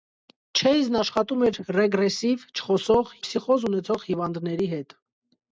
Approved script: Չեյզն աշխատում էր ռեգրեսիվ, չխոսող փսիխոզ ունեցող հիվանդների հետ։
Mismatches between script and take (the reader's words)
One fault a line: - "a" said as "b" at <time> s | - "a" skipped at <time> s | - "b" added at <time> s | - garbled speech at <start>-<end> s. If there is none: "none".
none